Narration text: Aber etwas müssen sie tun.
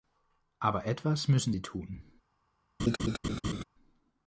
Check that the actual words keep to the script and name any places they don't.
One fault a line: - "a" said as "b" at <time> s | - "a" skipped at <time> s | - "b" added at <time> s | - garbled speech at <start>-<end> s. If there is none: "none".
none